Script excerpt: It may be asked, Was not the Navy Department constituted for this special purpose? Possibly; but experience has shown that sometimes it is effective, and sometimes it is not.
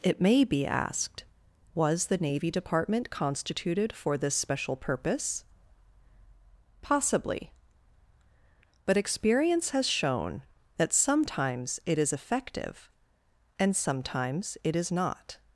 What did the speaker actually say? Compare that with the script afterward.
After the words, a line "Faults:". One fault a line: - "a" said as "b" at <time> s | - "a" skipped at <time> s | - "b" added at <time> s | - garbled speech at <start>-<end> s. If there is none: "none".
It may be asked, Was the Navy Department constituted for this special purpose? Possibly; but experience has shown that sometimes it is effective, and sometimes it is not.
Faults:
- "not" skipped at 2.1 s